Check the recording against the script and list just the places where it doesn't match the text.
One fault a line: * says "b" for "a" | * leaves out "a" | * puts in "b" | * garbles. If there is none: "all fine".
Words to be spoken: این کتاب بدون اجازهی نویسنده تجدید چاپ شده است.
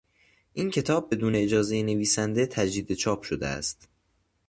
all fine